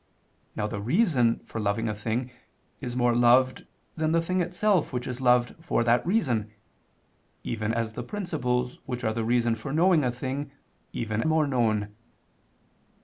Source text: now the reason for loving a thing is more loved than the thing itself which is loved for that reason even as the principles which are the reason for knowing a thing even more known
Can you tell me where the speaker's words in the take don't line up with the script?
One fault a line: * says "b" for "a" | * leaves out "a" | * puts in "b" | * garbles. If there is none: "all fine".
all fine